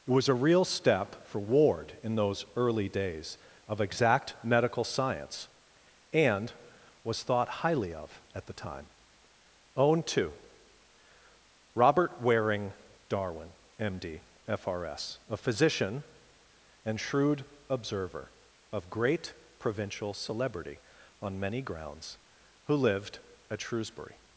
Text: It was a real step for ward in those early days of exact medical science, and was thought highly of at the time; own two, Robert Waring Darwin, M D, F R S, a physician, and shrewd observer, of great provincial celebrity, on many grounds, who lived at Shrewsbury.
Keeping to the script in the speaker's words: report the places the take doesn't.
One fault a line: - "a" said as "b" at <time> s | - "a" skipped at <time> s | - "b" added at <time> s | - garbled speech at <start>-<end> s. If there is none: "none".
none